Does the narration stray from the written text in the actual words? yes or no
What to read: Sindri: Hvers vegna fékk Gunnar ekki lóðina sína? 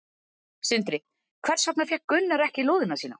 no